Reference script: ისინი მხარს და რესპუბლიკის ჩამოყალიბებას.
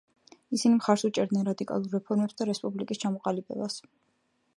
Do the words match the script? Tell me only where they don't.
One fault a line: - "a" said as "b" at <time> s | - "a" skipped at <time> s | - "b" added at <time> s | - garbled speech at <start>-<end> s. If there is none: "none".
- "უჭერდნენ რადიკალურ რეფორმებს" added at 1.1 s